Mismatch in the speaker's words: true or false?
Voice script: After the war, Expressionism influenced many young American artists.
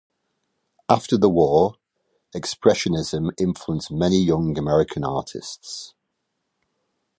false